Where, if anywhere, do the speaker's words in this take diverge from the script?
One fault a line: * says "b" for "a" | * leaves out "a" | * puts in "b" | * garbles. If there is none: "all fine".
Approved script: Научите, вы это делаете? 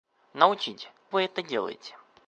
all fine